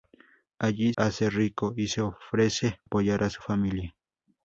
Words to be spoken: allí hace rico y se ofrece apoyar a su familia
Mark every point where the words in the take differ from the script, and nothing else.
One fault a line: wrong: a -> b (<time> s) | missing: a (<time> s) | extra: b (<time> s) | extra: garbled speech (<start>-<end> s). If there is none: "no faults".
no faults